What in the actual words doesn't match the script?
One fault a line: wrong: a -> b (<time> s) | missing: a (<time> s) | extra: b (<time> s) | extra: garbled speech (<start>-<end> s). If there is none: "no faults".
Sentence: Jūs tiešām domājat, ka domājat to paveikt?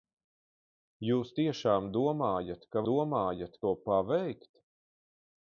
no faults